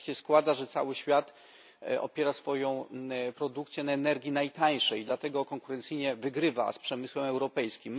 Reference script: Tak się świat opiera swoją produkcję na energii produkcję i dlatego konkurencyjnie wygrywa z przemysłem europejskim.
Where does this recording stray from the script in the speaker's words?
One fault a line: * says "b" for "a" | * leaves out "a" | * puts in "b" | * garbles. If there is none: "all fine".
* puts in "składa że cały"
* says "najtańszej" for "produkcję"